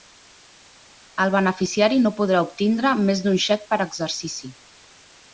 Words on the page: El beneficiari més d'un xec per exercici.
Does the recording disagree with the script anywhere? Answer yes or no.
yes